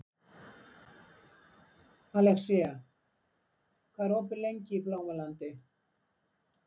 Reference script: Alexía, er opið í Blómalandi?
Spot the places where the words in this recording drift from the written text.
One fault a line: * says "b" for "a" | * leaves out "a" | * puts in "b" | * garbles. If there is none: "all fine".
* puts in "hvað"
* puts in "lengi"